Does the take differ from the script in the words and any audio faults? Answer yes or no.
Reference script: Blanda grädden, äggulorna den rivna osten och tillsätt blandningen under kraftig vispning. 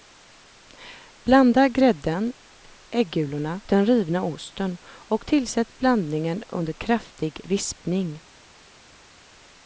no